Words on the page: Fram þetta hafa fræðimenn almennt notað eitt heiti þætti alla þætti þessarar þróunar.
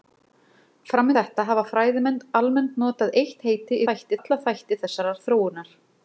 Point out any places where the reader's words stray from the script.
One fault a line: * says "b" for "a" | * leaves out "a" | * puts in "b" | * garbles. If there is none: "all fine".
all fine